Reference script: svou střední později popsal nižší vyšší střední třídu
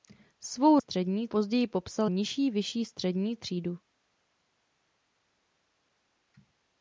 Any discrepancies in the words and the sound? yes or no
no